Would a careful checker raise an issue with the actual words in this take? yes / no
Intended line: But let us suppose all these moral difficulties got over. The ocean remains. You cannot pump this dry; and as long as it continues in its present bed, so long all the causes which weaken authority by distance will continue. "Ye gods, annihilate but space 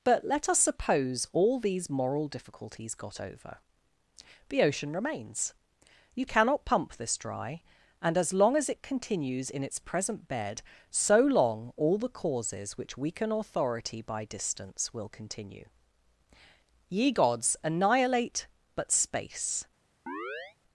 no